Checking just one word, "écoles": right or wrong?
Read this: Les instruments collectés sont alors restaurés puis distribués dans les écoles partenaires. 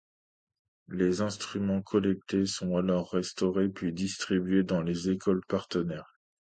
right